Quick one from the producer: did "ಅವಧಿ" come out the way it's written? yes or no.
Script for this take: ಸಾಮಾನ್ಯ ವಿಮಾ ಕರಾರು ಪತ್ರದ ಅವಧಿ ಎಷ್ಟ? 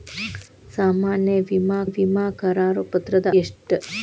no